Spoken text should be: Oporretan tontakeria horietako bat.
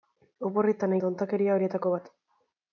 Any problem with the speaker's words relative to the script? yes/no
no